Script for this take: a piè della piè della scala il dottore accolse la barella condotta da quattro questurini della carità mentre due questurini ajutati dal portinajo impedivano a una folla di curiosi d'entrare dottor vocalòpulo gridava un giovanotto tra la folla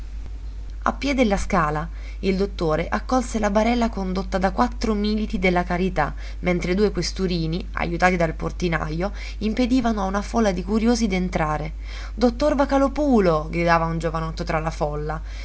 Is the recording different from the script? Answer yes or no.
yes